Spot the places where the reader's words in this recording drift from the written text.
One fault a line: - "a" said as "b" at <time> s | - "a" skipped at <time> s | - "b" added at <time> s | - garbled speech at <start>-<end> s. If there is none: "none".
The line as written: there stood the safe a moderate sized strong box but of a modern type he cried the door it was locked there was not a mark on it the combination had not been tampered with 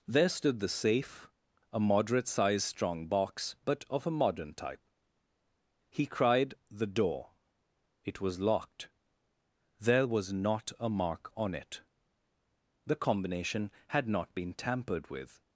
none